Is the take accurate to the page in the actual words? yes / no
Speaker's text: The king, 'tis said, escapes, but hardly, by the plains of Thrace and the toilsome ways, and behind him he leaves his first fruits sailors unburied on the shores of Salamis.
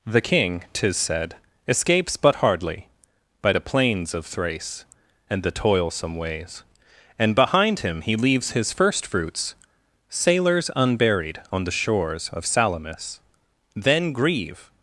no